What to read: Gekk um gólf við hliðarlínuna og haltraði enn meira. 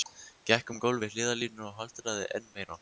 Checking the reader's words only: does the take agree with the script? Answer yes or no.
yes